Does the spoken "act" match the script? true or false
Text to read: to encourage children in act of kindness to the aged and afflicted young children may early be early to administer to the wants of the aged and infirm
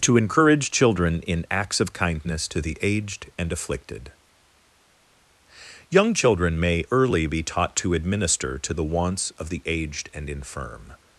false